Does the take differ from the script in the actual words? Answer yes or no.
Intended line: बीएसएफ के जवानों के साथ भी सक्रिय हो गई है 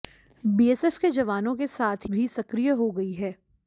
no